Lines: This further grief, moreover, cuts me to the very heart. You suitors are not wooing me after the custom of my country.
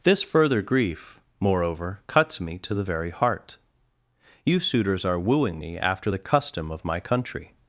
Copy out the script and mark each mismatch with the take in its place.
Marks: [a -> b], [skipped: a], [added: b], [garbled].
This further grief, moreover, cuts me to the very heart. You suitors are [skipped: not] wooing me after the custom of my country.